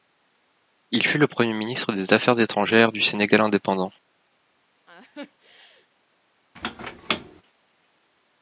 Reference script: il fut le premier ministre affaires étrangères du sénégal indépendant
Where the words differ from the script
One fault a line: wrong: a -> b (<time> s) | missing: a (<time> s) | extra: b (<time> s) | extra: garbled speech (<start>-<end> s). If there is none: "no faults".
extra: des (1.9 s)